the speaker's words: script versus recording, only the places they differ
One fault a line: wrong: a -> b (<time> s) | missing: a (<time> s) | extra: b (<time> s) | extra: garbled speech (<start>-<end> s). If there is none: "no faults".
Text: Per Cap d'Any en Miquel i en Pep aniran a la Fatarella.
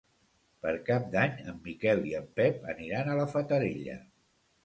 no faults